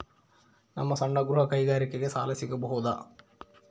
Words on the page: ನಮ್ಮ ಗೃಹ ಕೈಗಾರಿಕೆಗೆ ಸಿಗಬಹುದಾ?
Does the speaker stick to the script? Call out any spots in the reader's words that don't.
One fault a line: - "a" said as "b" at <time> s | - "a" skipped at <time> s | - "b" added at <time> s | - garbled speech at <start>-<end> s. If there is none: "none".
- "ಸಣ್ಣ" added at 0.9 s
- "ಸಾಲ" added at 2.1 s